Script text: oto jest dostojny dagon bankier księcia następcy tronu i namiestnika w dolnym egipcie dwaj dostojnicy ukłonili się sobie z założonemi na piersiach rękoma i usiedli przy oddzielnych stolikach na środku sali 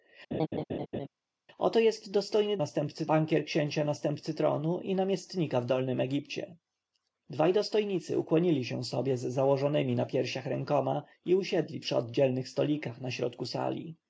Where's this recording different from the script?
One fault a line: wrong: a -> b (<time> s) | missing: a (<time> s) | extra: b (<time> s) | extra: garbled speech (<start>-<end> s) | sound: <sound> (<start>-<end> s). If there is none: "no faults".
sound: laugh (0.3-1.1 s)
wrong: dagon -> następcy (2.6 s)